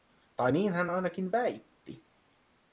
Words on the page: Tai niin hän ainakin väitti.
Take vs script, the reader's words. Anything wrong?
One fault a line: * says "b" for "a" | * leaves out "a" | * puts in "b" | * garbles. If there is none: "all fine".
all fine